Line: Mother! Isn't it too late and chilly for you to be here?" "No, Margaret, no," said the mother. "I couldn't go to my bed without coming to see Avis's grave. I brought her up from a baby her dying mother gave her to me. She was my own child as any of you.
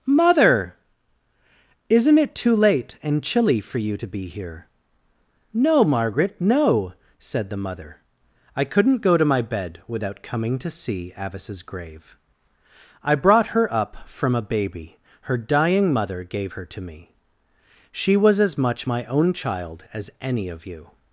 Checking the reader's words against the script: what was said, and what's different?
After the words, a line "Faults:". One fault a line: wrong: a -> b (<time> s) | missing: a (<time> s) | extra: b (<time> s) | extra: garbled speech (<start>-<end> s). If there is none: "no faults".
Mother! Isn't it too late and chilly for you to be here?" "No, Margaret, no," said the mother. "I couldn't go to my bed without coming to see Avis's grave. I brought her up from a baby her dying mother gave her to me. She was as much my own child as any of you.
Faults:
extra: as much (18.4 s)